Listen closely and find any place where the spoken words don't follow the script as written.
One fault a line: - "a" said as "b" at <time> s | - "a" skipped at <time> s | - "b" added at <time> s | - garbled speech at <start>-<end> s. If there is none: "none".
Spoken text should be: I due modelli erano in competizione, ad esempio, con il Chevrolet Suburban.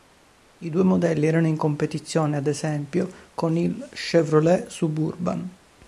none